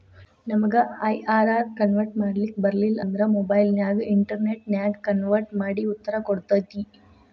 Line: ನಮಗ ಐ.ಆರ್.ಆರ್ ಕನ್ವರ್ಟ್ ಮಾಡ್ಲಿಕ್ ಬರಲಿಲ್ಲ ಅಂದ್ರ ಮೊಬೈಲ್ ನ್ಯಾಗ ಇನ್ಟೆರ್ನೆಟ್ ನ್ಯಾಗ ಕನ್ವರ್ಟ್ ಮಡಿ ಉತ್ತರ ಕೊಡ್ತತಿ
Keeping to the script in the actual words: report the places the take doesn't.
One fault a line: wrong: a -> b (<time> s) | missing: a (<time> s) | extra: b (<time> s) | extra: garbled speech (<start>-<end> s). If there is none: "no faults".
no faults